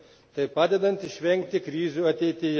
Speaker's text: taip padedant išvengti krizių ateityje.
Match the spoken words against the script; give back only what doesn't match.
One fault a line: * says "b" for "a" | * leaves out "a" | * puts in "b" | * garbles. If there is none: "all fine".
all fine